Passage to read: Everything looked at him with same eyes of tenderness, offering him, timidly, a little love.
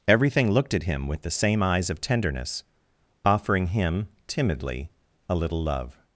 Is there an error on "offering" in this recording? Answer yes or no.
no